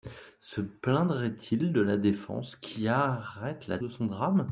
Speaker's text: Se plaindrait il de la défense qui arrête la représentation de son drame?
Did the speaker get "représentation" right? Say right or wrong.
wrong